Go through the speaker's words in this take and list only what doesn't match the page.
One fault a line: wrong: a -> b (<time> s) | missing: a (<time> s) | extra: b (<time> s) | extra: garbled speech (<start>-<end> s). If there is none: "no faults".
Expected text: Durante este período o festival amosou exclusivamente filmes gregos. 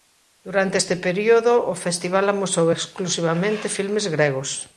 no faults